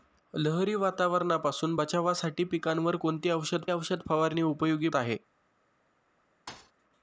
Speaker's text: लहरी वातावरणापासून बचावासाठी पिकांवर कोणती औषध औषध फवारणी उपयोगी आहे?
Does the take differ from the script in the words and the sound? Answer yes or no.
yes